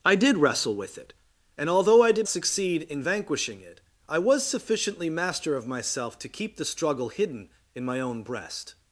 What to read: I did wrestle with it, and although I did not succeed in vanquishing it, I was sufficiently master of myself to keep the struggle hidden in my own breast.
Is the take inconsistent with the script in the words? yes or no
yes